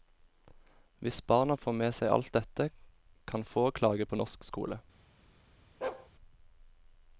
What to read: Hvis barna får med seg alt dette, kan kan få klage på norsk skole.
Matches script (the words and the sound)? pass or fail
fail